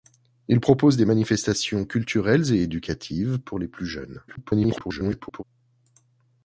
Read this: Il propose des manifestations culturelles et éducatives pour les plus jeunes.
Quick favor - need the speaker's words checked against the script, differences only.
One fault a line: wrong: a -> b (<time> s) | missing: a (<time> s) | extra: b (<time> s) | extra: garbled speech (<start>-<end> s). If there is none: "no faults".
extra: garbled speech (4.3-5.4 s)